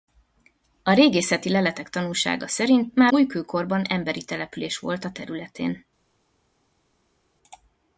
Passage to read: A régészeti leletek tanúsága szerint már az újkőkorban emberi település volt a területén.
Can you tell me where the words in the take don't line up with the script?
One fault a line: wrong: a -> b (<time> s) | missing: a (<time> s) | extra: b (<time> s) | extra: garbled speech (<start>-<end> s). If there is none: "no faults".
missing: az (3.1 s)